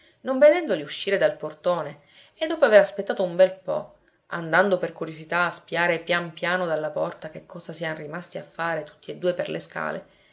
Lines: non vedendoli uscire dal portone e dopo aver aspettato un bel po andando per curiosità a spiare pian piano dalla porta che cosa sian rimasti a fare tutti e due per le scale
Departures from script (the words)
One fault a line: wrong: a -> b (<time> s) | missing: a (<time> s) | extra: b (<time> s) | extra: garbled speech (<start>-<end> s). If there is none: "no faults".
no faults